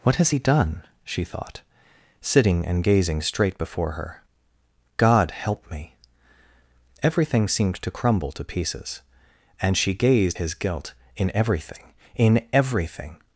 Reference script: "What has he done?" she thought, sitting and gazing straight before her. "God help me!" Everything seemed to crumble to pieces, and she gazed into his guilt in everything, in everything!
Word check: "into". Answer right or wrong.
wrong